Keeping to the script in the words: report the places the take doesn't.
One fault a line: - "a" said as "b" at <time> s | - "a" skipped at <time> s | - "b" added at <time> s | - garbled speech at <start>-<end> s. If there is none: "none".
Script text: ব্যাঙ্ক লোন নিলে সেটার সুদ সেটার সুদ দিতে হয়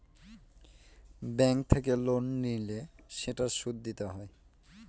- "থেকে" added at 1.7 s
- "সেটার সুদ" skipped at 3.8 s